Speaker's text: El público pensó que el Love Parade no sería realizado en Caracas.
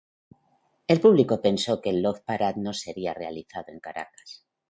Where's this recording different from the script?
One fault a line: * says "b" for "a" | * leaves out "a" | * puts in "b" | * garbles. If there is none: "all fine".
all fine